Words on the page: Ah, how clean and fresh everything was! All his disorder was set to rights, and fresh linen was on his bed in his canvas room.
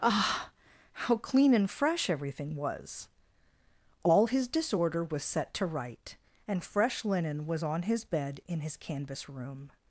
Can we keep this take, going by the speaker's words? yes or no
no